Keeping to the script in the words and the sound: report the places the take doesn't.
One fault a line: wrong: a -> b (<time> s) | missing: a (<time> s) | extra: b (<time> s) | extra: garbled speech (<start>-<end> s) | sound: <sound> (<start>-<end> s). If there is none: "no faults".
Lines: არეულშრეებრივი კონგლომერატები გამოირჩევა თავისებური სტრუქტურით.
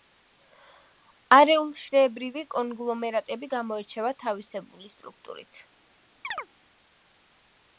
sound: chirp (6.2-6.5 s)